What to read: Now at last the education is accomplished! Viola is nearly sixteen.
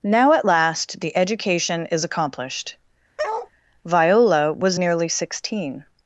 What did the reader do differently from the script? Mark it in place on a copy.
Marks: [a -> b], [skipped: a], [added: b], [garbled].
Now at last the education is accomplished! Viola [is -> was] nearly sixteen.